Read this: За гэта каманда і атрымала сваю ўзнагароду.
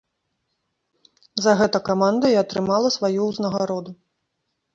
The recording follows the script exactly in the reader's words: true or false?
true